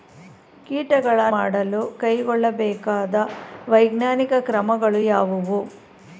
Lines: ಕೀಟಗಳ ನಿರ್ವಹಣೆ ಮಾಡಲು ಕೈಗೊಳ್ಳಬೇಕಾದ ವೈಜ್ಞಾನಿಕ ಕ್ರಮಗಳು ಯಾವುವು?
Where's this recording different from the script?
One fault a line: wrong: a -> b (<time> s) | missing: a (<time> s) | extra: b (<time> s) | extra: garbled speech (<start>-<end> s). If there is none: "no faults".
missing: ನಿರ್ವಹಣೆ (1.2 s)